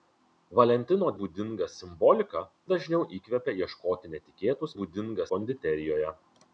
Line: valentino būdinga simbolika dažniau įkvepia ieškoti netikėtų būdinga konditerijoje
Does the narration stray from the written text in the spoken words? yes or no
no